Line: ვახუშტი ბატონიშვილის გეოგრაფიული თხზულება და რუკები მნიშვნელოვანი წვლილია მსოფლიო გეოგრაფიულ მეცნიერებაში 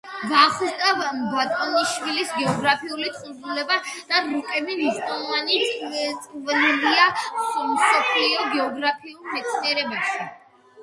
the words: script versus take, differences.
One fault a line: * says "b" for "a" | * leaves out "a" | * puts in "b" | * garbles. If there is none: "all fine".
all fine